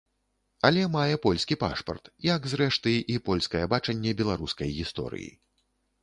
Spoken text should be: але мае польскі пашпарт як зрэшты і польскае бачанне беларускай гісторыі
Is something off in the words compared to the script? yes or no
no